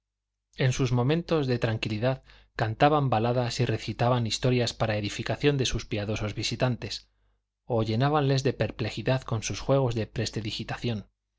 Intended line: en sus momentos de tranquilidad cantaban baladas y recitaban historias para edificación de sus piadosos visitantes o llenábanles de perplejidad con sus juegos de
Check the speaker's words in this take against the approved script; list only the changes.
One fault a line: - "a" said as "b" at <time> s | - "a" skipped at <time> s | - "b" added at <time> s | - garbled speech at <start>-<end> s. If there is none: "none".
none